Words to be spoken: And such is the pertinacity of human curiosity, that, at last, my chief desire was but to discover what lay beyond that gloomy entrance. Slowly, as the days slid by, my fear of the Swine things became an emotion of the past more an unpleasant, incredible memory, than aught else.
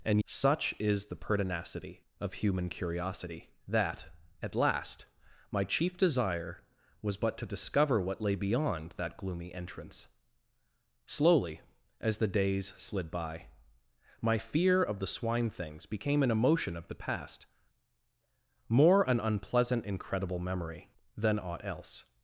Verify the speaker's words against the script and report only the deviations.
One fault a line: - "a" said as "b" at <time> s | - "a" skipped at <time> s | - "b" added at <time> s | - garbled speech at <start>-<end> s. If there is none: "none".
none